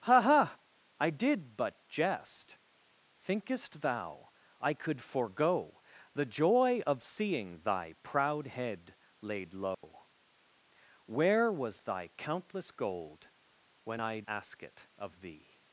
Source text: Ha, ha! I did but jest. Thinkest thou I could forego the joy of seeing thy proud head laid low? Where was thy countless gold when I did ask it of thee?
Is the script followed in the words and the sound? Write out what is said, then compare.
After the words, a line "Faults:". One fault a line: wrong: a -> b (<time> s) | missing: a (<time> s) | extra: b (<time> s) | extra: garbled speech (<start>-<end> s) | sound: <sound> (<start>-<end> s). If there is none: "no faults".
Ha, ha! I did but jest. Thinkest thou I could forego the joy of seeing thy proud head laid low? Where was thy countless gold when I ask it of thee?
Faults:
sound: dropout (9.7-9.8 s)
missing: did (14.2 s)